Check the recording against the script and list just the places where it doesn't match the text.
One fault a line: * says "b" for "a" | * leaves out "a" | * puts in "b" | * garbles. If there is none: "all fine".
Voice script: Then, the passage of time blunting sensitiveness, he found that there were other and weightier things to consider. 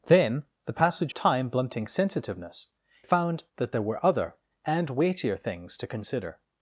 * leaves out "of"
* leaves out "he"